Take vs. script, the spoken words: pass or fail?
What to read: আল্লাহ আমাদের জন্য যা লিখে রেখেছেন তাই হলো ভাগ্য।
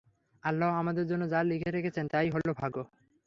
pass